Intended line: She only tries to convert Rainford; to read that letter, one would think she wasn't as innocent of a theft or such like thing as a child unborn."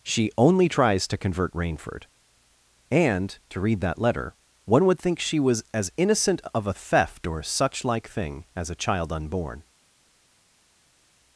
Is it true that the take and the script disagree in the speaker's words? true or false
true